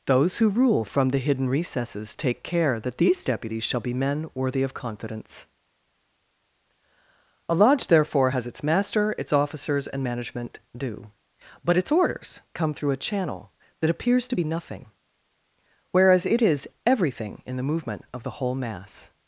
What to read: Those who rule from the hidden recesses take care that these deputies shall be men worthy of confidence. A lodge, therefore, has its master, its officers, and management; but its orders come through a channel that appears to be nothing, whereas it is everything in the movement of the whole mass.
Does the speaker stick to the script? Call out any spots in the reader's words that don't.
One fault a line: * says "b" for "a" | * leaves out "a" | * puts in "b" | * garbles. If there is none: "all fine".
* puts in "due"